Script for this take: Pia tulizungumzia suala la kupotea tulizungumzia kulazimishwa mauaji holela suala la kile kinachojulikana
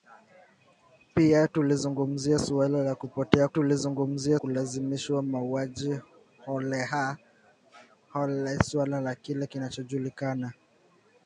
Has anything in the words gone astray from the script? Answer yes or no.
no